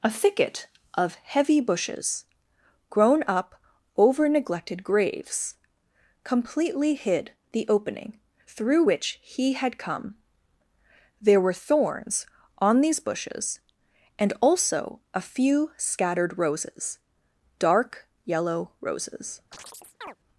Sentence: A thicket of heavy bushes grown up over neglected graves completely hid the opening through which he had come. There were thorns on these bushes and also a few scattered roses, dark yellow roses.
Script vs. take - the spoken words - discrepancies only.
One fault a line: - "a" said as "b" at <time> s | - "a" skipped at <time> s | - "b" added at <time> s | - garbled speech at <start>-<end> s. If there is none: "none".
none